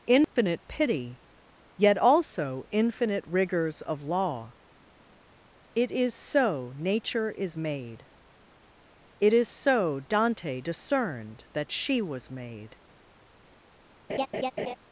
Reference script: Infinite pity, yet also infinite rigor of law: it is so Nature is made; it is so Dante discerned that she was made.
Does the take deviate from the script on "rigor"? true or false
true